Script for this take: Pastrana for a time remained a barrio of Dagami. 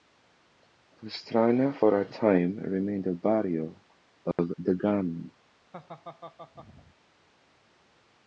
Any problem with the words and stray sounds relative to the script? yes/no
yes